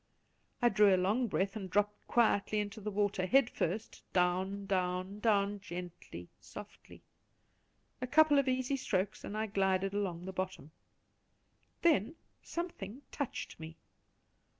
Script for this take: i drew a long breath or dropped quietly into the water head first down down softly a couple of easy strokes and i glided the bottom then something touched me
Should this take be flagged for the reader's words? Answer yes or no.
yes